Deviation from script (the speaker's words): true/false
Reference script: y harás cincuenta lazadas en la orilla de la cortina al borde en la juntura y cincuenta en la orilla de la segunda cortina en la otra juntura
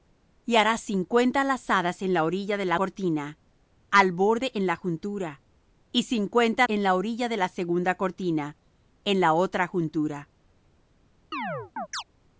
false